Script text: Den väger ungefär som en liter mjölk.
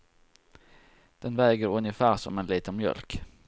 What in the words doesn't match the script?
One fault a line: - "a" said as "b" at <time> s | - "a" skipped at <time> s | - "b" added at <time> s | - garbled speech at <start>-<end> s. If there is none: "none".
none